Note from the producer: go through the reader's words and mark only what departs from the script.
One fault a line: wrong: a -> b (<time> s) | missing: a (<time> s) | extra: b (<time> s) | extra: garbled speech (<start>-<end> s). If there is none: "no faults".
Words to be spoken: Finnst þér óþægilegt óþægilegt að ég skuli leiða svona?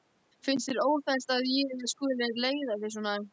missing: óþægilegt (1.3 s)
extra: þig (2.9 s)